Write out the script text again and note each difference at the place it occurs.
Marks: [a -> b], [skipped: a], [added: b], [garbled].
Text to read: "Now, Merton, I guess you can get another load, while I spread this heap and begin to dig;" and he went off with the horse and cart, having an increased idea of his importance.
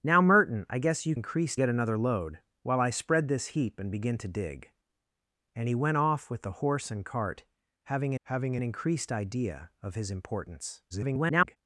"Now, Merton, I guess you [can -> increased] get another load, while I spread this heap and begin to dig;" and he went off with the horse and cart, having [added: having] an increased idea of his importance. [garbled]